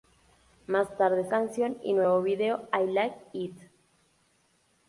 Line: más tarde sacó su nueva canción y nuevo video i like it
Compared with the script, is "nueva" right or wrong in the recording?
wrong